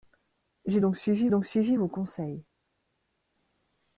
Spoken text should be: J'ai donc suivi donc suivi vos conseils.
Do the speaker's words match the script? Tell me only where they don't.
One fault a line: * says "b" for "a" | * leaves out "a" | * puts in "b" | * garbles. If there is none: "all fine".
all fine